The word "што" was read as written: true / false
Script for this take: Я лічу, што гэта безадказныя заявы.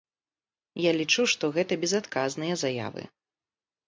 true